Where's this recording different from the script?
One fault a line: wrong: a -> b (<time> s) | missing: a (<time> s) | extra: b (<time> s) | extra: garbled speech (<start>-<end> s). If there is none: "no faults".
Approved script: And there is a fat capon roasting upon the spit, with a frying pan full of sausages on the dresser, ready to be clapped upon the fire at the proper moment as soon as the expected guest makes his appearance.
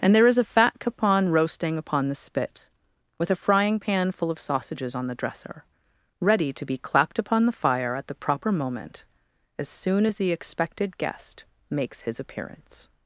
no faults